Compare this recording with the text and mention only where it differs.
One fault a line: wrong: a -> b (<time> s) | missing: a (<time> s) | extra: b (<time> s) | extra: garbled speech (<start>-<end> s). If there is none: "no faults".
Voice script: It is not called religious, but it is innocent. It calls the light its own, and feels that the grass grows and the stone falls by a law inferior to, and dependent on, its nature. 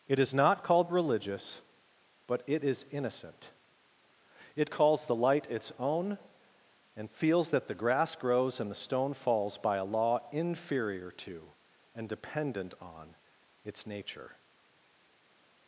no faults